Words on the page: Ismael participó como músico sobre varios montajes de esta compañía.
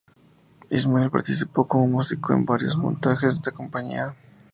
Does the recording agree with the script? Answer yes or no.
no